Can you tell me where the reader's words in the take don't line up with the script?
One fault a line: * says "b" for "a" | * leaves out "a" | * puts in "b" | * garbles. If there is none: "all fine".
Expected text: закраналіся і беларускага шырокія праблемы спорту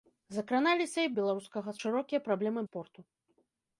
all fine